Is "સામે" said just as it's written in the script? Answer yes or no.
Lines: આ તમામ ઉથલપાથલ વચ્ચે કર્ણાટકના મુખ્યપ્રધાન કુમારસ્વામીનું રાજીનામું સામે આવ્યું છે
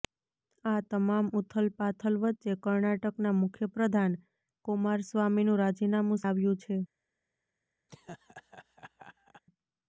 no